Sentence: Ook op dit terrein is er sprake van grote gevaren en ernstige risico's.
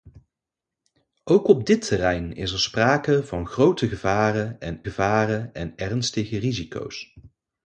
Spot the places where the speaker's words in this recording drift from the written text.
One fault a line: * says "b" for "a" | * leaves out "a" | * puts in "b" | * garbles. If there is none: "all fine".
* puts in "gevaren en"